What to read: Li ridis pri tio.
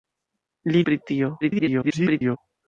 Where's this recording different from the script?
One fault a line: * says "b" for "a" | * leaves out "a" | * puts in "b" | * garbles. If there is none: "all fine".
* leaves out "ridis"
* garbles